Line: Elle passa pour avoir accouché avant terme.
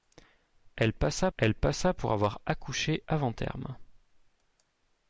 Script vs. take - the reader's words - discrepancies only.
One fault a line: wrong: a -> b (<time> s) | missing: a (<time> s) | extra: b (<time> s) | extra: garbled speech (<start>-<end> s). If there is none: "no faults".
extra: elle passa (1.4 s)